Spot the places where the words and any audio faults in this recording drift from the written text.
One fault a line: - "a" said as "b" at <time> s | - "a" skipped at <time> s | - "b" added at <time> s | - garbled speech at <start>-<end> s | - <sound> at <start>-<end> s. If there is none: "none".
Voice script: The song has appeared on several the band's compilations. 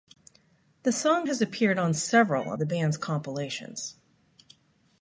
none